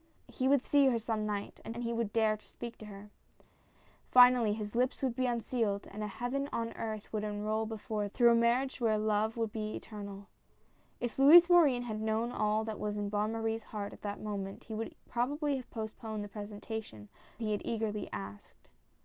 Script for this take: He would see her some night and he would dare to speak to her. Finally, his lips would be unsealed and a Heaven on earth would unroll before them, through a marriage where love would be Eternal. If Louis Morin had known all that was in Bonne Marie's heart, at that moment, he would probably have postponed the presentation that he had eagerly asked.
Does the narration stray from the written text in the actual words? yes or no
yes